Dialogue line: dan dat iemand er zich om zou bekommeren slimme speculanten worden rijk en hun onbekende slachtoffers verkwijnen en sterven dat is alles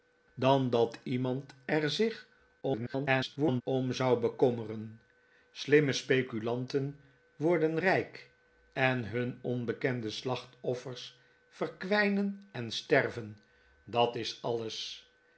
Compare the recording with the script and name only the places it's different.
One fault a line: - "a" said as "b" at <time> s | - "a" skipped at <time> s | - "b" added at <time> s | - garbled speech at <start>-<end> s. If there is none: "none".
- garbled speech at 2.6-3.6 s